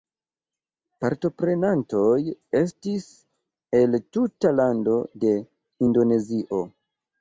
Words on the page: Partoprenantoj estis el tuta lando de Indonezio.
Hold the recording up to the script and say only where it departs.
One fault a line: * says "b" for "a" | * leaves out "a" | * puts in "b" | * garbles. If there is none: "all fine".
all fine